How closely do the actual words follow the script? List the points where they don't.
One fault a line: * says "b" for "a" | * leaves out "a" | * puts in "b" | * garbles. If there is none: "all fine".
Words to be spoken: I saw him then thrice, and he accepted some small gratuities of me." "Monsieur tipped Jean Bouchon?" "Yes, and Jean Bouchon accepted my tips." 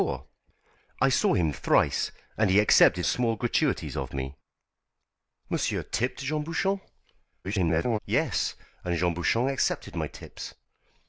* leaves out "then"
* leaves out "some"
* garbles